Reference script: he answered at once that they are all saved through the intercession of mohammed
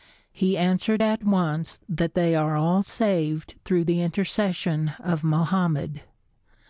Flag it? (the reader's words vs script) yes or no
no